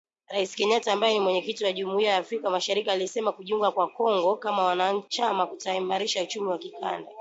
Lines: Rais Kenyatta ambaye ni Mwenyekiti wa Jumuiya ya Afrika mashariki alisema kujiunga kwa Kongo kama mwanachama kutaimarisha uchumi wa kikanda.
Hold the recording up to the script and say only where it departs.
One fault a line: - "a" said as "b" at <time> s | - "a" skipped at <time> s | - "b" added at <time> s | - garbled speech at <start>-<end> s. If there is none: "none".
none